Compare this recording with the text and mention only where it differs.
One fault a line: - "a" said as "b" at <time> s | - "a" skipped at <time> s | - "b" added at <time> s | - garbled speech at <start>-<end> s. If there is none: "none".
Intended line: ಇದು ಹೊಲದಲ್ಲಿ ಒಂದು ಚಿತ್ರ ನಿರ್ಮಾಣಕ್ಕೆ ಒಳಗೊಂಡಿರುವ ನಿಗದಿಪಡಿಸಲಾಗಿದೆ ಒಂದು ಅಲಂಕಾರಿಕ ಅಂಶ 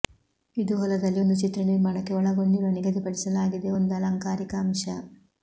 none